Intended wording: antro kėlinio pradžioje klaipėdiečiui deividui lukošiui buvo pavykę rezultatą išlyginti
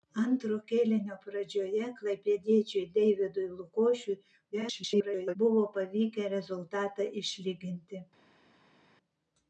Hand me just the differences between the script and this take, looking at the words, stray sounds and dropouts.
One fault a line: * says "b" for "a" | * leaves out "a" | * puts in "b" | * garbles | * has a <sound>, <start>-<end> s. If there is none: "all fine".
* garbles